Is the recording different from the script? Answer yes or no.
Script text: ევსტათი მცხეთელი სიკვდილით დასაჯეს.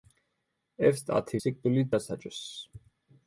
yes